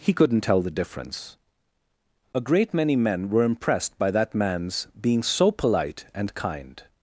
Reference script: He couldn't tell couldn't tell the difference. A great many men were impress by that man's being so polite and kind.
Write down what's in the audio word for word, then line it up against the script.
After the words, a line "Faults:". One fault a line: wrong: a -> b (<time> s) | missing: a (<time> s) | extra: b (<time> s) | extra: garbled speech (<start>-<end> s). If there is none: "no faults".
He couldn't tell the difference. A great many men were impressed by that man's being so polite and kind.
Faults:
missing: couldn't tell (0.6 s)
wrong: impress -> impressed (3.4 s)